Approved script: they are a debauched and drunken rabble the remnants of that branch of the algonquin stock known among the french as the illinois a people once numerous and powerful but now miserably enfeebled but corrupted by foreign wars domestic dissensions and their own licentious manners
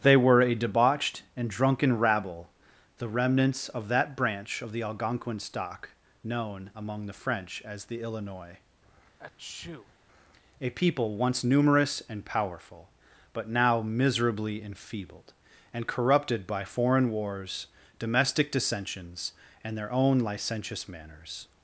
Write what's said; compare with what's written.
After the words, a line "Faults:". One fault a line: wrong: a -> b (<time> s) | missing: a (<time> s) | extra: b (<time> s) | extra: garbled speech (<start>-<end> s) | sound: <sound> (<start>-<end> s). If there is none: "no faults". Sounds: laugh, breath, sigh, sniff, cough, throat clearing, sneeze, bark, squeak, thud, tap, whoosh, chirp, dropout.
they were a debauched and drunken rabble the remnants of that branch of the algonquin stock known among the french as the illinois a people once numerous and powerful but now miserably enfeebled and corrupted by foreign wars domestic dissensions and their own licentious manners
Faults:
wrong: are -> were (0.2 s)
sound: sneeze (9.2-9.9 s)
wrong: but -> and (15.7 s)